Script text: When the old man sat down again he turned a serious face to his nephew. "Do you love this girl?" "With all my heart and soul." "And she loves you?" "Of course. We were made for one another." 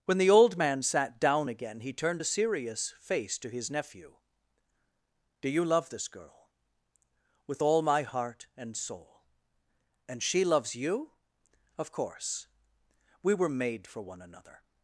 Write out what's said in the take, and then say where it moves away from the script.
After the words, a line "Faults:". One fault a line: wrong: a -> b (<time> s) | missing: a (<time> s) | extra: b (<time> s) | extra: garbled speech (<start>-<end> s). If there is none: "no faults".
When the old man sat down again he turned a serious face to his nephew. "Do you love this girl?" "With all my heart and soul." "And she loves you?" "Of course. We were made for one another."
Faults:
no faults